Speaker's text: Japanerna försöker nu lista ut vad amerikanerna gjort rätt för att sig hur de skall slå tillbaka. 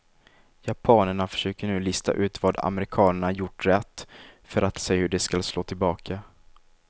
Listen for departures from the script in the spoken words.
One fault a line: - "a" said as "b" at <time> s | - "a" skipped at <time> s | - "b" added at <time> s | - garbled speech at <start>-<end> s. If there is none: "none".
none